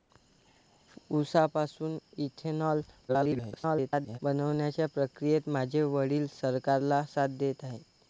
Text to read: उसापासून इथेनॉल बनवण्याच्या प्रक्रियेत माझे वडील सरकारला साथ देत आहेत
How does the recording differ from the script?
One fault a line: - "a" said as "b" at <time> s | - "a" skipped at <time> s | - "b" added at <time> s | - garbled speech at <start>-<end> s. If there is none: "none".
- garbled speech at 3.1-4.2 s